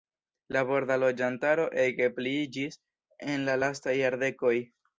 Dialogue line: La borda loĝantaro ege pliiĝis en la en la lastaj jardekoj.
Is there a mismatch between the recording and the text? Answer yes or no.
yes